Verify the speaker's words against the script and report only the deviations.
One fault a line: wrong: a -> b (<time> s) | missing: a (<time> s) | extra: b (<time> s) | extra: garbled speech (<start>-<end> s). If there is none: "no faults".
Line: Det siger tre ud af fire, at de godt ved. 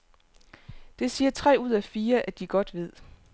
no faults